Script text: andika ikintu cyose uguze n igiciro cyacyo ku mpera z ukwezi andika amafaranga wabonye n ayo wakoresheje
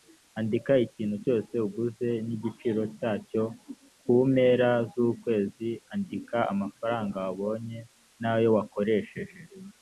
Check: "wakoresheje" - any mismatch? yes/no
no